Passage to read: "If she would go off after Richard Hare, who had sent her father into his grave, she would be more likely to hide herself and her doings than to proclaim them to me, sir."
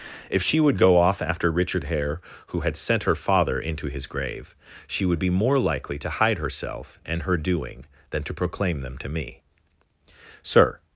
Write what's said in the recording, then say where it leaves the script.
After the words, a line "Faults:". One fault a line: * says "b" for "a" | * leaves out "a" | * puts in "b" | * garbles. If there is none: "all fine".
"If she would go off after Richard Hare, who had sent her father into his grave, she would be more likely to hide herself and her doing than to proclaim them to me, sir."
Faults:
* says "doing" for "doings"